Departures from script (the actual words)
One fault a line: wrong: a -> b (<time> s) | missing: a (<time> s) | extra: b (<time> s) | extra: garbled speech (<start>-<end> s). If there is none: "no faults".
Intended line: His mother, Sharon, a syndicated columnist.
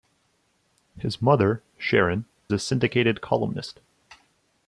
no faults